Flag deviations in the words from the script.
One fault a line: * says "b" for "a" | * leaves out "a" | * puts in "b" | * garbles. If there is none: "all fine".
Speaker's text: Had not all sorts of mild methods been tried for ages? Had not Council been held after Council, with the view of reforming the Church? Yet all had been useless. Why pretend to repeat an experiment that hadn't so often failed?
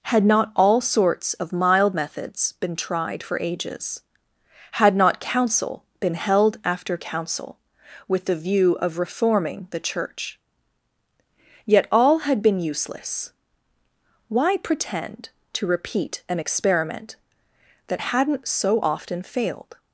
all fine